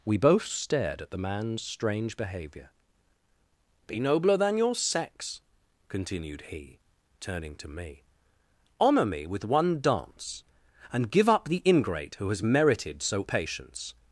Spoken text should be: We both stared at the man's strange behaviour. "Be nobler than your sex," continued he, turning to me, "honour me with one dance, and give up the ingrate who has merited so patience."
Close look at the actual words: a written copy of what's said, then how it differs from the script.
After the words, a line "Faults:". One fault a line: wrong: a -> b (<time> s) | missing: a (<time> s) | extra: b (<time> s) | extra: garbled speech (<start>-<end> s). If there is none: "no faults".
We both stared at the man's strange behaviour. "Be nobler than your sex," continued he, turning to me, "honour me with one dance, and give up the ingrate who has merited so patience."
Faults:
no faults